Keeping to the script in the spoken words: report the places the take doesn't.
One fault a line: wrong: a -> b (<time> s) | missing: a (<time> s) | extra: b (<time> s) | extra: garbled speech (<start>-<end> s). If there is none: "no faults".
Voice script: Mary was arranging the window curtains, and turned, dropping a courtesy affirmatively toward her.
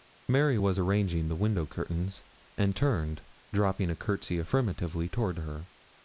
no faults